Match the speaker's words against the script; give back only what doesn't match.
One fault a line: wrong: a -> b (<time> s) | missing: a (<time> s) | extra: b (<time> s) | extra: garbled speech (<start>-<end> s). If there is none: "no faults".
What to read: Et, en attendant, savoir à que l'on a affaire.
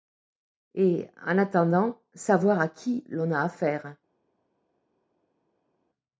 wrong: que -> qui (2.7 s)